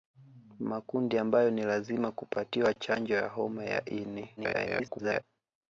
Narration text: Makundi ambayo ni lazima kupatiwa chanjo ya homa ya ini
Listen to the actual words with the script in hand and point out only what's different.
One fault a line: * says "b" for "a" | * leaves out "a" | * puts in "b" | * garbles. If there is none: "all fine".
* garbles